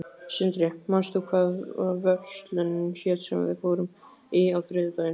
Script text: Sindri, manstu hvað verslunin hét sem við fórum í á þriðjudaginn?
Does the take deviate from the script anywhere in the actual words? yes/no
no